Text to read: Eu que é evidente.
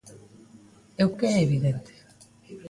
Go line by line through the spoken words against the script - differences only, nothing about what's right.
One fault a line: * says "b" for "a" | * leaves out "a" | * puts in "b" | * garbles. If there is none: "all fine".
all fine